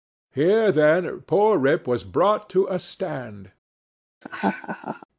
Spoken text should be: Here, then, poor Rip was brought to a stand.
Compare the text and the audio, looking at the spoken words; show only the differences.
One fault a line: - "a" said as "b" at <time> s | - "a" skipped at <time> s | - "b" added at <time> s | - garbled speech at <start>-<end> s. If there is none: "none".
none